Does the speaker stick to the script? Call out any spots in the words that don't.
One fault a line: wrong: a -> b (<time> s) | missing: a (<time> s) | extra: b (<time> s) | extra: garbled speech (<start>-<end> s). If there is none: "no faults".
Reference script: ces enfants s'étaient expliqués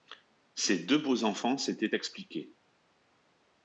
extra: deux beaux (0.8 s)